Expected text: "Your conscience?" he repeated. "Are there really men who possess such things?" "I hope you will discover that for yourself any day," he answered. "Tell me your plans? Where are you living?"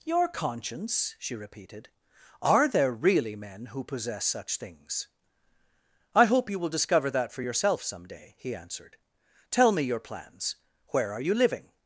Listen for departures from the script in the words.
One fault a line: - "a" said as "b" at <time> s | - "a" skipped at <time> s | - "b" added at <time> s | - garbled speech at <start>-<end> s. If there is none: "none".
- "he" said as "she" at 1.2 s
- "any" said as "some" at 7.8 s